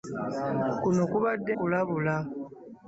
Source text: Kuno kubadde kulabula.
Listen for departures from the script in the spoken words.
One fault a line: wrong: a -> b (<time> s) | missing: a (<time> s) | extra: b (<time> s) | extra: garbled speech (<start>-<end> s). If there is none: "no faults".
no faults